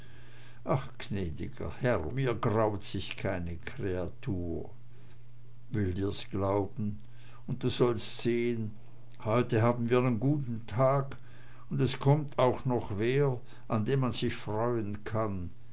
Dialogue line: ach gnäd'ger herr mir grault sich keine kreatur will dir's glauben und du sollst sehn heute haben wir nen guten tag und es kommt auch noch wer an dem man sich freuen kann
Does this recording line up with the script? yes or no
yes